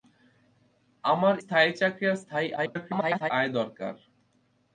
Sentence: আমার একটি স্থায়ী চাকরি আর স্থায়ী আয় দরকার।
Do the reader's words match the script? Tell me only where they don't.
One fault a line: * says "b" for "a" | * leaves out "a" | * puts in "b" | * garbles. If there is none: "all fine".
* leaves out "একটি"
* garbles